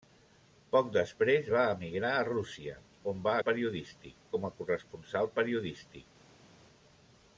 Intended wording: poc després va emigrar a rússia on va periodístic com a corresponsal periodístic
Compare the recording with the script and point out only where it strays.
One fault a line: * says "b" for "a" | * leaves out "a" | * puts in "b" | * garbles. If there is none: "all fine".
all fine